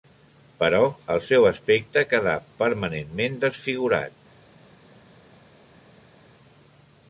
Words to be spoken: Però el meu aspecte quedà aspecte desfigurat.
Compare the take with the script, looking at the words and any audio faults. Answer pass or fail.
fail